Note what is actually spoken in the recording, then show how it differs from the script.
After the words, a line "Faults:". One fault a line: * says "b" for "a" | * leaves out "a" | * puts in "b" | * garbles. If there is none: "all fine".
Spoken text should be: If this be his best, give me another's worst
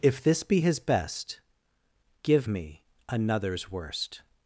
If this be his best, give me another's worst
Faults:
all fine